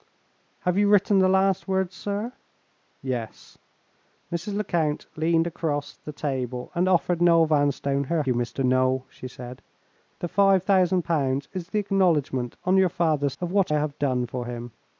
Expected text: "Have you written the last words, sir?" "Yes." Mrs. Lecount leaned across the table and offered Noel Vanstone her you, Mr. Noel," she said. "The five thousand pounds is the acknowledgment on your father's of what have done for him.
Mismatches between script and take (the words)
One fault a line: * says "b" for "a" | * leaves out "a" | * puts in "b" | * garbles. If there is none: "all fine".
all fine